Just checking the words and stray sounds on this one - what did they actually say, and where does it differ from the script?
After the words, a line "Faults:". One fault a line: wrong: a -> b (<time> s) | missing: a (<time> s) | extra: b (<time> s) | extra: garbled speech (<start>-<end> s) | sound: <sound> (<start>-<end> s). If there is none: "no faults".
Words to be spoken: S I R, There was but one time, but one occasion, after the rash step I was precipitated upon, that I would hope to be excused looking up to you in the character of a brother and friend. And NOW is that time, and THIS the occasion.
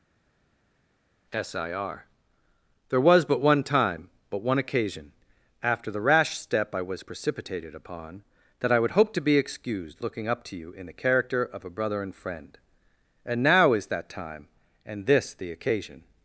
S I R, There was but one time, but one occasion, after the rash step I was precipitated upon, that I would hope to be excused looking up to you in the character of a brother and friend. And NOW is that time, and THIS the occasion.
Faults:
no faults